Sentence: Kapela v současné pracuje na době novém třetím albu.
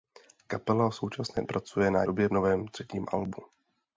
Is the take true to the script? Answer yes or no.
yes